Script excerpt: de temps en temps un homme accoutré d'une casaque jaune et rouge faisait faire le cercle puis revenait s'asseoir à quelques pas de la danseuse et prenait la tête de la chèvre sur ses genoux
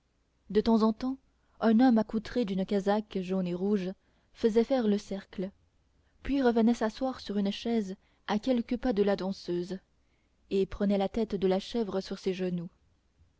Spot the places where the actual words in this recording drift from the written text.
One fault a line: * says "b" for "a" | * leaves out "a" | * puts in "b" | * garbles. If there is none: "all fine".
* puts in "sur une chaise"